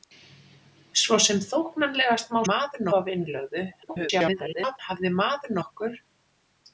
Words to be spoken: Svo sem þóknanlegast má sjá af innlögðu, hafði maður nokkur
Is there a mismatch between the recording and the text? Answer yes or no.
yes